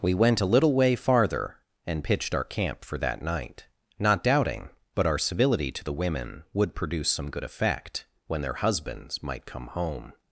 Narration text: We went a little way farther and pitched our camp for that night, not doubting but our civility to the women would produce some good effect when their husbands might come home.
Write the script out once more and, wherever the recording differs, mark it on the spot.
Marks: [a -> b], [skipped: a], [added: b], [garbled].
We went a little way farther and pitched our camp for that night, not doubting but our civility to the women would produce some good effect when their husbands might come home.